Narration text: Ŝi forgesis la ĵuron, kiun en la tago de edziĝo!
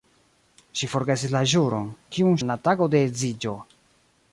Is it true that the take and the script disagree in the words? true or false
false